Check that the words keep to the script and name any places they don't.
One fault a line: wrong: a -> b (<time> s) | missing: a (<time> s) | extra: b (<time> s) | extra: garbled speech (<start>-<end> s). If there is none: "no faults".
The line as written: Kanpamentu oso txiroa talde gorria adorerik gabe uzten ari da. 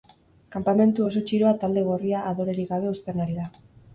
no faults